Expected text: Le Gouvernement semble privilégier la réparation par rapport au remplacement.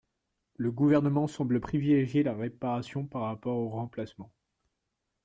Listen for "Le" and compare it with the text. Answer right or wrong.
right